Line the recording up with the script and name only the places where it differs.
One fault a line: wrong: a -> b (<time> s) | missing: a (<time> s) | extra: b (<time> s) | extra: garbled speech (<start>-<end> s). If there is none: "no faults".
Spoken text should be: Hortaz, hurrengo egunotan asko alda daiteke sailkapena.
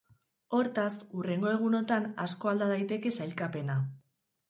no faults